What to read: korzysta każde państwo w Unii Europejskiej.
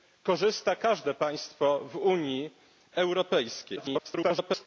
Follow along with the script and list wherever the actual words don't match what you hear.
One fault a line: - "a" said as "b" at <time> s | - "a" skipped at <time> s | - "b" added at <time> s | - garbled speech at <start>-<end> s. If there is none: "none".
- garbled speech at 3.8-4.7 s